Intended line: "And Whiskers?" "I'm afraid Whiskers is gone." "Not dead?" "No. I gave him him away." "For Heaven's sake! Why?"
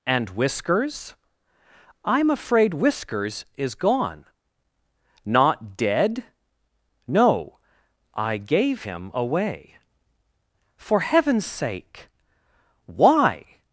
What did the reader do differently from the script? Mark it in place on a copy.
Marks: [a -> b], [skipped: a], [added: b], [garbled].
"And Whiskers?" "I'm afraid Whiskers is gone." "Not dead?" "No. I gave him [skipped: him] away." "For Heaven's sake! Why?"